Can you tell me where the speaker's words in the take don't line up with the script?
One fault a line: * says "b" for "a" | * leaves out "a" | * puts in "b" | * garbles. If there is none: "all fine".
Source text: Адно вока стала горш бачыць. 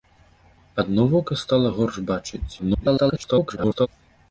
* garbles